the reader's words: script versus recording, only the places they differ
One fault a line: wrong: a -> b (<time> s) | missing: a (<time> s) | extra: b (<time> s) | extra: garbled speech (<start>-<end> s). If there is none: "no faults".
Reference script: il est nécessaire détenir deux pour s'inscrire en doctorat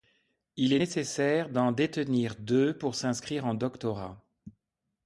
extra: d'en (1.5 s)